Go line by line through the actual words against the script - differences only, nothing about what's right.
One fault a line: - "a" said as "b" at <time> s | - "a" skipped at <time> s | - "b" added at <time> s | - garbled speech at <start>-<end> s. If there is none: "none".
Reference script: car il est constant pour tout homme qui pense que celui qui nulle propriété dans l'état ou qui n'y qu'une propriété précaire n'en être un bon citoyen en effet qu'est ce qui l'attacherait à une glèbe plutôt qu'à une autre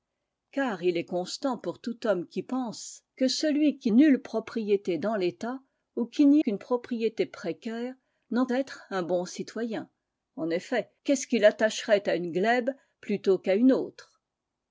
none